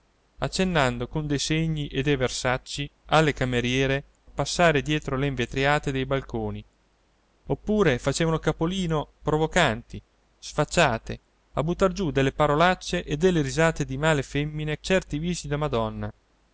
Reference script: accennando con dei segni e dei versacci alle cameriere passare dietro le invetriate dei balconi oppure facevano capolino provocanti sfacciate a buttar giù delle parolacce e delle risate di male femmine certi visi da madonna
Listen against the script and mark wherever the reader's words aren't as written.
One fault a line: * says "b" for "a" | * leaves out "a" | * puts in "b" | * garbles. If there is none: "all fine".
all fine